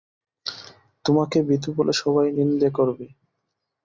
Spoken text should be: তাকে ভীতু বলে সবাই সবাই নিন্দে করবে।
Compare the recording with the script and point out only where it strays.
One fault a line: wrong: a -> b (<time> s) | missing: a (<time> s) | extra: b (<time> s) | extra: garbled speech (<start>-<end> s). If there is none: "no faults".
wrong: তাকে -> তোমাকে (1.1 s)
missing: সবাই (2.3 s)